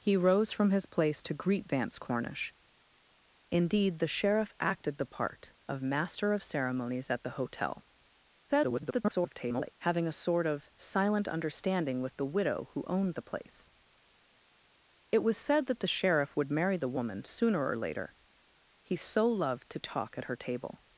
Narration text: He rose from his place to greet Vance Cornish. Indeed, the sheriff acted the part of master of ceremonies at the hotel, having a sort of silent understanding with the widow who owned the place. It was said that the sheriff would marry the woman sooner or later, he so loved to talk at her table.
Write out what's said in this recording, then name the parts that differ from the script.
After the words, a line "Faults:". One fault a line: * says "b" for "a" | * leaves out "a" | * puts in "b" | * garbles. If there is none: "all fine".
He rose from his place to greet Vance Cornish. Indeed, the sheriff acted the part of master of ceremonies at the hotel, [garbled] having a sort of silent understanding with the widow who owned the place. It was said that the sheriff would marry the woman sooner or later, he so loved to talk at her table.
Faults:
* garbles